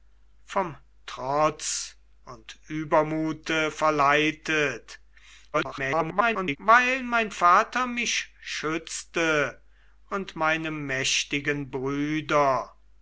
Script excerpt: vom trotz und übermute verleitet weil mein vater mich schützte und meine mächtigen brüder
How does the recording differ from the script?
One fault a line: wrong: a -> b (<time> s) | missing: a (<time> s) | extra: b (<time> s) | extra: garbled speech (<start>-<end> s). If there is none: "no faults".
extra: garbled speech (5.5-6.6 s)